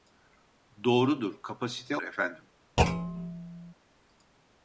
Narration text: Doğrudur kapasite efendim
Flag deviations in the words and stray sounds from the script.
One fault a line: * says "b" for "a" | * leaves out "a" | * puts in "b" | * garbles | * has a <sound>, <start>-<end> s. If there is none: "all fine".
* has a thud, 2.8-3.7 s